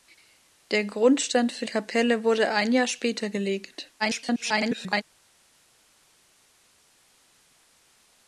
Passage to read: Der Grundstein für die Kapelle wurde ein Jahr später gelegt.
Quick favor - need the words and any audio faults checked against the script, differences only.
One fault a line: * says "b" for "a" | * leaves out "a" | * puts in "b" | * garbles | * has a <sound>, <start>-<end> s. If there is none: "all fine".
* leaves out "die"
* garbles